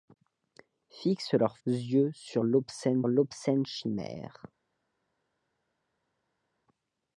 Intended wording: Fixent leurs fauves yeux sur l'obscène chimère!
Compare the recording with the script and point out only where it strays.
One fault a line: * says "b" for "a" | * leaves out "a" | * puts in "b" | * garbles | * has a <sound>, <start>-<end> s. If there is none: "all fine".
* leaves out "fauves"
* puts in "l'obscène"